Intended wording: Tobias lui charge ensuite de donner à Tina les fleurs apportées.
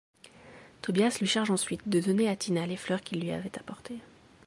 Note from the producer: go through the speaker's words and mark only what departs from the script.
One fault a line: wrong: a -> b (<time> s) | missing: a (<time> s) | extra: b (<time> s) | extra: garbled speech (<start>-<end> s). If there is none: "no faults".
extra: qu'il lui avait (3.0 s)